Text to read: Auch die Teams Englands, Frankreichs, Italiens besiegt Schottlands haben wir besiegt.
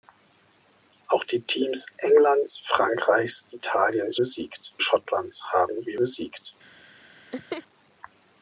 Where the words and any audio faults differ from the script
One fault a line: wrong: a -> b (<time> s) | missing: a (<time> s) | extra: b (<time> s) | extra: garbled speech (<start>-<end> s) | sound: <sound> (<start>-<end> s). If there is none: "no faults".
sound: laugh (7.3-7.6 s)